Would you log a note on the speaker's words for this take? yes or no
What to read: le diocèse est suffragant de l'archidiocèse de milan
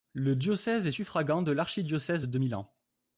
no